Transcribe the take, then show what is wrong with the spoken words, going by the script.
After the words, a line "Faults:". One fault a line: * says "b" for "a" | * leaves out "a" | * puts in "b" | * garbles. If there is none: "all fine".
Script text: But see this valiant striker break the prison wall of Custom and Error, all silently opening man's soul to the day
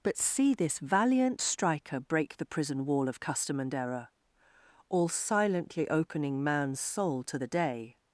But see this valiant striker break the prison wall of Custom and Error, all silently opening man's soul to the day
Faults:
all fine